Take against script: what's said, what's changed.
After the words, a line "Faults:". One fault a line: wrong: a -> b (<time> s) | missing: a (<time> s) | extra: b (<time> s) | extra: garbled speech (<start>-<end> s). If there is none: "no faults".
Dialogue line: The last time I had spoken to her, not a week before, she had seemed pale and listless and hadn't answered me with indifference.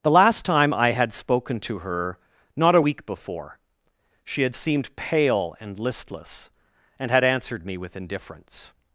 The last time I had spoken to her, not a week before, she had seemed pale and listless and had answered me with indifference.
Faults:
wrong: hadn't -> had (7.1 s)